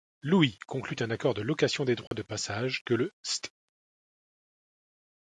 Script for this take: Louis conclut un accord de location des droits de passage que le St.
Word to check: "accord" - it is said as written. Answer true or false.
true